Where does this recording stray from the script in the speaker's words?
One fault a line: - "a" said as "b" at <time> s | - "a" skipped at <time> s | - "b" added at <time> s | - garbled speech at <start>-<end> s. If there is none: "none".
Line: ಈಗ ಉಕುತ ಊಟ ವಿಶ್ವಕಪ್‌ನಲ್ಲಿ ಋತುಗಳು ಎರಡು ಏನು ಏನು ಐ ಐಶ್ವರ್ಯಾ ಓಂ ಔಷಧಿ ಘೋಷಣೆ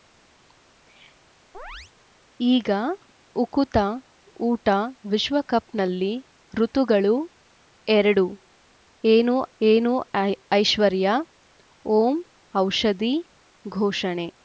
none